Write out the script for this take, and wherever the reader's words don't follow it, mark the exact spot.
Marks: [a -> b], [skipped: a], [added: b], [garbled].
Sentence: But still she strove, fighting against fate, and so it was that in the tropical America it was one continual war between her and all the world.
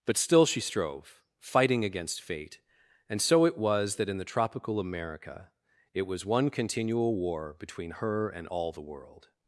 But still she strove, fighting against fate, and so it was that in the tropical America it was one continual war between her and all the world.